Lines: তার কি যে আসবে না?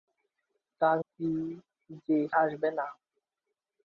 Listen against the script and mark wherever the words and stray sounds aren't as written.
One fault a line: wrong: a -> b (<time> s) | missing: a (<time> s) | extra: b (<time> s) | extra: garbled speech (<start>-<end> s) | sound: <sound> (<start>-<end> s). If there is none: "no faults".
no faults